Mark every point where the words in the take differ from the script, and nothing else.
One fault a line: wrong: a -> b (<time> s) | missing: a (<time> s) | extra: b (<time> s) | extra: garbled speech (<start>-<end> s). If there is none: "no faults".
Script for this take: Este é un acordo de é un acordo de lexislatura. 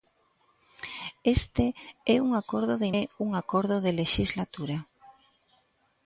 no faults